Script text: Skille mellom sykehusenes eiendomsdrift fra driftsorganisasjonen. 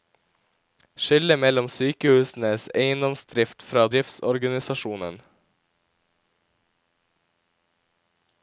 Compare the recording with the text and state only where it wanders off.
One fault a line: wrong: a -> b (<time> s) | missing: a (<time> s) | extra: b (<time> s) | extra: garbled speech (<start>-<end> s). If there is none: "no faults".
no faults